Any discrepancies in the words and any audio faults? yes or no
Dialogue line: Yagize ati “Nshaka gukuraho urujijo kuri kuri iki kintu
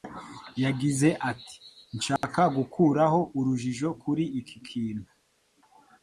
yes